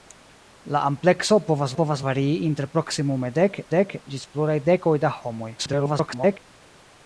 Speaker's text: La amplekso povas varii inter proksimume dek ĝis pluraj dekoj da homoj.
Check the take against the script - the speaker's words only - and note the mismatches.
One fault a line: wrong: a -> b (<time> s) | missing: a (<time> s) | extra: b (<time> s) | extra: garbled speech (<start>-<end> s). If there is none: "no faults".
extra: povas (1.8 s)
extra: dek (3.8 s)
extra: garbled speech (5.6-6.4 s)